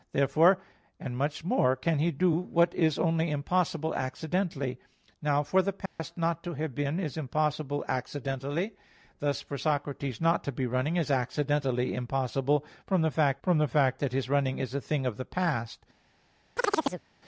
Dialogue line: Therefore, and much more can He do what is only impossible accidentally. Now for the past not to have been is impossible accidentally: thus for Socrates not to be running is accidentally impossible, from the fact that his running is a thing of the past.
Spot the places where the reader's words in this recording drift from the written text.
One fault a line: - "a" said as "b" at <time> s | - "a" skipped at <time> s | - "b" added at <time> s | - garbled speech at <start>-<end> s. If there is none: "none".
- "from the fact" added at 13.4 s